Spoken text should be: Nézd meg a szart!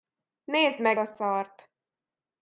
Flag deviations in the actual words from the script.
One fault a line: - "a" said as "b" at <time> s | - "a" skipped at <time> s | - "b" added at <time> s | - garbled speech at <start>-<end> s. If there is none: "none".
none